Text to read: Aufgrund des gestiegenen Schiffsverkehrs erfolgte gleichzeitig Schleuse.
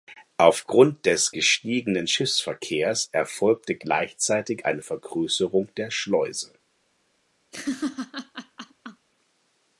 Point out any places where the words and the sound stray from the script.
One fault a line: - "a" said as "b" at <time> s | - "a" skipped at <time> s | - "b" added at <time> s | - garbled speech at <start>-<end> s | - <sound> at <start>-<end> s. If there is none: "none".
- "eine Vergrößerung der" added at 4.6 s
- laugh at 7.5-9.1 s